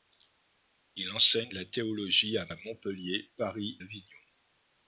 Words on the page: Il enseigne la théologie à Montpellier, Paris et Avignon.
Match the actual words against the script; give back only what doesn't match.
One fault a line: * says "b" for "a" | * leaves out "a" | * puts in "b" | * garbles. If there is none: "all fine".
* puts in "à"
* leaves out "et"